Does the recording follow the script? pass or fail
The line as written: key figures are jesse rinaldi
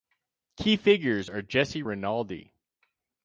pass